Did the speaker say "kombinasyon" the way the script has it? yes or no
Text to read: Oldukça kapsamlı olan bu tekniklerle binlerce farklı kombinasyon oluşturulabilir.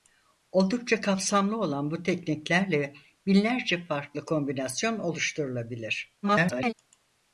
yes